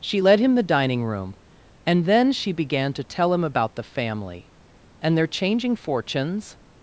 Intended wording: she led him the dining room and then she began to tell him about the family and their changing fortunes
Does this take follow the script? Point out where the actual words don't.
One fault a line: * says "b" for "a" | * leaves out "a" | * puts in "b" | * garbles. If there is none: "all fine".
all fine